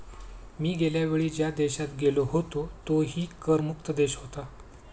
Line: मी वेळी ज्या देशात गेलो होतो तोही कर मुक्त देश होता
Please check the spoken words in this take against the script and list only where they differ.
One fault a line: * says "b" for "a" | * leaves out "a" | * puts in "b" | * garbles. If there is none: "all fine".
* puts in "गेल्या"